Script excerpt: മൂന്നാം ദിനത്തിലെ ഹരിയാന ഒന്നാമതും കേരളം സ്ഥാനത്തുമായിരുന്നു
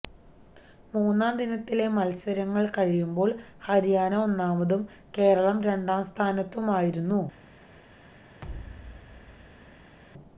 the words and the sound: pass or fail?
fail